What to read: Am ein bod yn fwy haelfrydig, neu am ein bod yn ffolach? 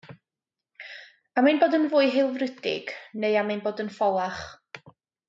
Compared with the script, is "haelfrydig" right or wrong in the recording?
right